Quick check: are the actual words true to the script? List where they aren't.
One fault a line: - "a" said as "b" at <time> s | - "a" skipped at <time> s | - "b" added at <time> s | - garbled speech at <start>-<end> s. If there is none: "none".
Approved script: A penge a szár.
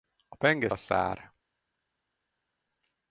none